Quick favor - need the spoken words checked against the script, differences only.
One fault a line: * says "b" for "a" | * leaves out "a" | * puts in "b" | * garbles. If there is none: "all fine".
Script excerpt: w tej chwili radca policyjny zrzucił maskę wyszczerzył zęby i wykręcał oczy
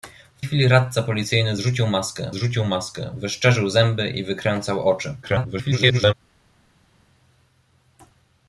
* leaves out "tej"
* puts in "zrzucił maskę"
* garbles